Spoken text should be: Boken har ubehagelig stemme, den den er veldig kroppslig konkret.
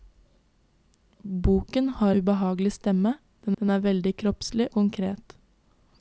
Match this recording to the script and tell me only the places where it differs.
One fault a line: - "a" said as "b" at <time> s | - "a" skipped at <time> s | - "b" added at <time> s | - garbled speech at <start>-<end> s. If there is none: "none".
none